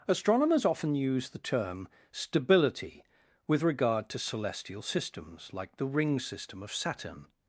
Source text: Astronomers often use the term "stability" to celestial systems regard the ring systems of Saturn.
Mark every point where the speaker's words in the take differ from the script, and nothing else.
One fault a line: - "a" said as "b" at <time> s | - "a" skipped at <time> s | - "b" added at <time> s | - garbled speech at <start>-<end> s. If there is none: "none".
- "with regard" added at 3.5 s
- "regard" said as "like" at 5.5 s
- "systems" said as "system" at 6.2 s